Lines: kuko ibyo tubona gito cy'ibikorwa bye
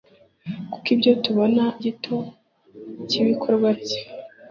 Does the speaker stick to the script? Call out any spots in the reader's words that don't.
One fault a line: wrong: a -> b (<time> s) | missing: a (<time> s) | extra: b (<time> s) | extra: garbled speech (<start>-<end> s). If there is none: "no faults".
no faults